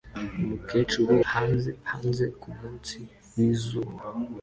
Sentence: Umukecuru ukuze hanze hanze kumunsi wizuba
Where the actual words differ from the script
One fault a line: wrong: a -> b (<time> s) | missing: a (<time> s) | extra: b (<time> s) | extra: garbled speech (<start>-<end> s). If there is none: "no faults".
missing: ukuze (1.1 s)